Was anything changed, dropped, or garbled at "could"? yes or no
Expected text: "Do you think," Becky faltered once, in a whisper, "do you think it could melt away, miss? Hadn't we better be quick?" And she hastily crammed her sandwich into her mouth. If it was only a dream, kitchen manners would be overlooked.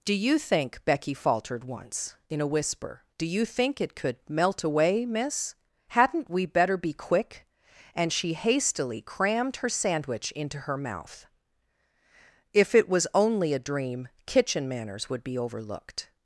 no